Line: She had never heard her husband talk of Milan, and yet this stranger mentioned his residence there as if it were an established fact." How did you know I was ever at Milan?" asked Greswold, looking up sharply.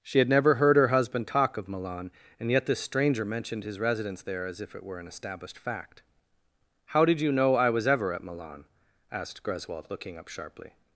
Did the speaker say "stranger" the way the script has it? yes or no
yes